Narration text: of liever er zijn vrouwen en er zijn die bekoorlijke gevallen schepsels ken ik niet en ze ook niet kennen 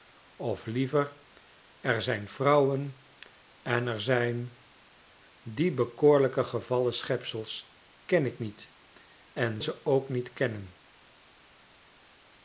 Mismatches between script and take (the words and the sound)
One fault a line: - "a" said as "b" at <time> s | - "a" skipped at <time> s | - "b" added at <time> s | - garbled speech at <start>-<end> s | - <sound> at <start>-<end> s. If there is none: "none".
none